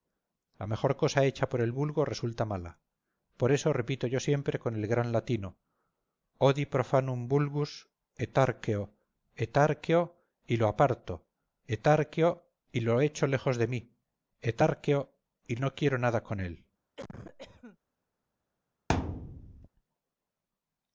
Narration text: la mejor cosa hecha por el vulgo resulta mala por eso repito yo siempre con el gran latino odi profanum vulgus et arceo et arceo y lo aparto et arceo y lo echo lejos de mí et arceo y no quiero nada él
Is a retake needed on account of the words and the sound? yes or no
yes